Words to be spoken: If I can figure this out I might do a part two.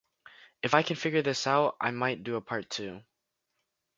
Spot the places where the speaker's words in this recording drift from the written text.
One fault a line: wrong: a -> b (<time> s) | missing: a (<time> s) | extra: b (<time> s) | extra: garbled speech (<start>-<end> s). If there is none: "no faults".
no faults